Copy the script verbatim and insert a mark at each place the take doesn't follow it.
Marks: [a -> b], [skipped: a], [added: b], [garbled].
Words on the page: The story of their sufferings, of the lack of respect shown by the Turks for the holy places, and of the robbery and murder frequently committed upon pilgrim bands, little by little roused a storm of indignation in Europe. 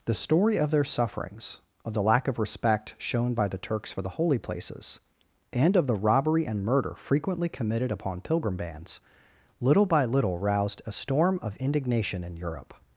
The story of their sufferings, of the lack of respect shown by the Turks for the holy places, and of the robbery and murder frequently committed upon pilgrim bands, little by little roused a storm of indignation in Europe.